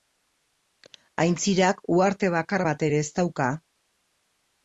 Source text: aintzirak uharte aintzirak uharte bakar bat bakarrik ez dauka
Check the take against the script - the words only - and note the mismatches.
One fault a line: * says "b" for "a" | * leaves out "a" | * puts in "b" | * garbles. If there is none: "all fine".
* leaves out "aintzirak uharte"
* says "ere" for "bakarrik"